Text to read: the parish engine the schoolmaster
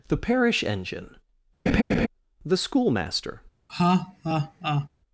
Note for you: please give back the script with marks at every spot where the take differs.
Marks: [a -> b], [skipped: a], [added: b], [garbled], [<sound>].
the parish engine [laugh] the schoolmaster [laugh]